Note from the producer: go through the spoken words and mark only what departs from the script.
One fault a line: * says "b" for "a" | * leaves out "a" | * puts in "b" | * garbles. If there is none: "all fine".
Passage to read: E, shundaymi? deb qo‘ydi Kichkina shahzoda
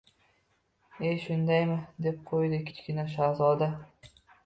all fine